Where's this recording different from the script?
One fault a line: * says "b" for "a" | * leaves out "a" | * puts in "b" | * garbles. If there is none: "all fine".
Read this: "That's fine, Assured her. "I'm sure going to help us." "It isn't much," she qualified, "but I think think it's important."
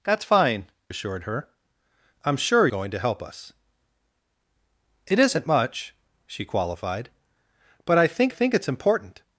all fine